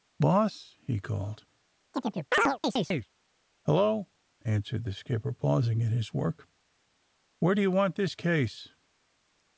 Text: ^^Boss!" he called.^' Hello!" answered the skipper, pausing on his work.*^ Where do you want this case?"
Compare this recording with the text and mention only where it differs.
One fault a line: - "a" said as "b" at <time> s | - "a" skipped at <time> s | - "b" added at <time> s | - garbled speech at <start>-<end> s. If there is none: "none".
- "on" said as "in" at 5.8 s